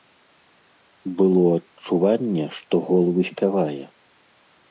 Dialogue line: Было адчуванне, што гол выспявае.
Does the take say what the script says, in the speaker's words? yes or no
yes